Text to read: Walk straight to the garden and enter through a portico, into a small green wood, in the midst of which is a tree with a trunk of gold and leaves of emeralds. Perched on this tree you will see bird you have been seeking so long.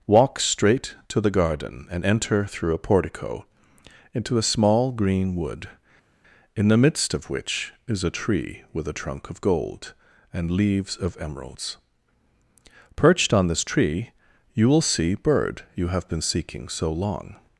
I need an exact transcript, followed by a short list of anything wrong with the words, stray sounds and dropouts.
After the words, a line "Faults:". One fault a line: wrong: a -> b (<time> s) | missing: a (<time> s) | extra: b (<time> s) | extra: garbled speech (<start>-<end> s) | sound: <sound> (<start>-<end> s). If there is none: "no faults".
Walk straight to the garden and enter through a portico, into a small green wood, in the midst of which is a tree with a trunk of gold and leaves of emeralds. Perched on this tree you will see bird you have been seeking so long.
Faults:
no faults